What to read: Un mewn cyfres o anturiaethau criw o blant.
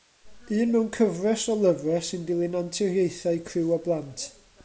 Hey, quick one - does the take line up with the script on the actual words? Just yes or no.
no